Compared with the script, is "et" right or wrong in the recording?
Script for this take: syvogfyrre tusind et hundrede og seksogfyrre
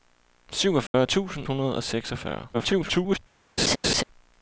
wrong